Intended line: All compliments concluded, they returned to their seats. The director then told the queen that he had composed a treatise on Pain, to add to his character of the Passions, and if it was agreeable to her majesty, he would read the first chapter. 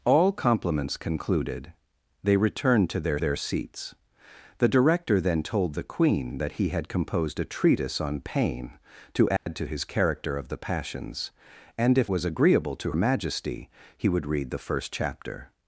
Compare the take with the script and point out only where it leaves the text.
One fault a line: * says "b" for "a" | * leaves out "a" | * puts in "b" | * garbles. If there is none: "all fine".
* puts in "their"
* leaves out "it"
* leaves out "her"